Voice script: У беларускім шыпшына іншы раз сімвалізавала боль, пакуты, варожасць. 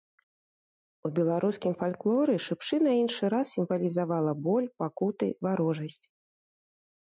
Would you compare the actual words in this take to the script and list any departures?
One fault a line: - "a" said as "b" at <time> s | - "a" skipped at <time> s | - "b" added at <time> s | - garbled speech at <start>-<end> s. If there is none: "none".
- "фальклоры" added at 1.8 s